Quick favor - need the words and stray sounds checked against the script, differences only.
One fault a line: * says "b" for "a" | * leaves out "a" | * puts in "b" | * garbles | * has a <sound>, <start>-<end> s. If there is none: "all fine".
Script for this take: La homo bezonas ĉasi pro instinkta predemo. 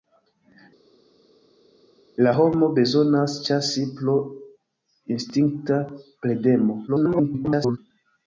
* garbles